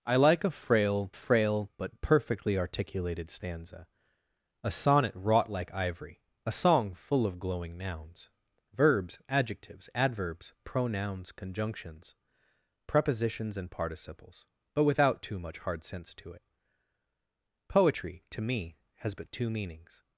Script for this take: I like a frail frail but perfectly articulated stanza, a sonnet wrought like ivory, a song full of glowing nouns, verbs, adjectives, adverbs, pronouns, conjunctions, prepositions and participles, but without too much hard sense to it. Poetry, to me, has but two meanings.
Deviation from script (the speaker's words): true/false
false